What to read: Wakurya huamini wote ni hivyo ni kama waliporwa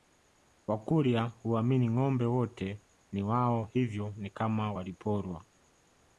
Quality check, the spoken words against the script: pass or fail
fail